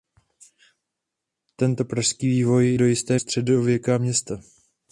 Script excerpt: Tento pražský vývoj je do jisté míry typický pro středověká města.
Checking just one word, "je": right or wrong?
wrong